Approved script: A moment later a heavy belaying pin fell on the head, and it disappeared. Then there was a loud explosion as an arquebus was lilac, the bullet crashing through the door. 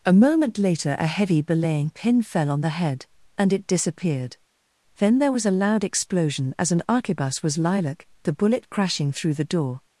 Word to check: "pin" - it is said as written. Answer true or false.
true